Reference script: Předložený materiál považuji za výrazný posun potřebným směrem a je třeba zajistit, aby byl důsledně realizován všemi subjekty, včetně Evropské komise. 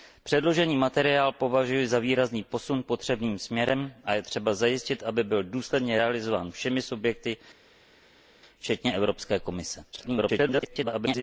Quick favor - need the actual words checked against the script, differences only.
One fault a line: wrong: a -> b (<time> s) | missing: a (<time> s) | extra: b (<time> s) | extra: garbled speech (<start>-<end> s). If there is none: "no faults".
extra: garbled speech (9.9-11.2 s)